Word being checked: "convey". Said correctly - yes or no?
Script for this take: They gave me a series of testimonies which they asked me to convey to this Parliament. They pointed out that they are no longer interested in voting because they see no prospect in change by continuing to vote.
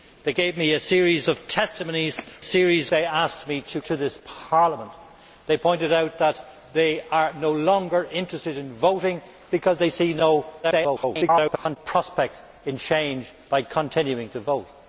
no